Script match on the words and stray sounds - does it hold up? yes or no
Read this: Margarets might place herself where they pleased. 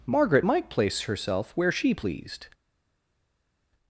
no